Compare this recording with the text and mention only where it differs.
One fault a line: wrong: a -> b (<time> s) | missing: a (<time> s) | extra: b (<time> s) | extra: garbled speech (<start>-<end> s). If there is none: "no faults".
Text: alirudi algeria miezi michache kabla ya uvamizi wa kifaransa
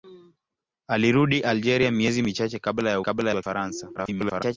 wrong: uvamizi -> kabla (3.0 s)
extra: garbled speech (4.0-4.6 s)